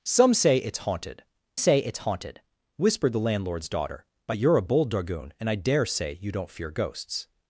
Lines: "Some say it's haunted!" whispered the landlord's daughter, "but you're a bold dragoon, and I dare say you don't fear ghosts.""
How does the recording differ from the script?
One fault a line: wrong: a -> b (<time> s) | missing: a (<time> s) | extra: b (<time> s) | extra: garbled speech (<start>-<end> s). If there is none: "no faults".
extra: say it's haunted (1.6 s)